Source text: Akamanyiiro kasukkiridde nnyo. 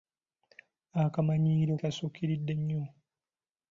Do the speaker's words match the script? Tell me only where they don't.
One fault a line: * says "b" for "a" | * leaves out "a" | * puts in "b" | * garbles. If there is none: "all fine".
all fine